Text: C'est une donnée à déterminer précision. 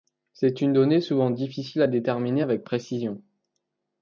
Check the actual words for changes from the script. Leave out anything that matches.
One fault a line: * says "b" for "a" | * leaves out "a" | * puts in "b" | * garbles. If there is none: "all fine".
* puts in "souvent difficile"
* puts in "avec"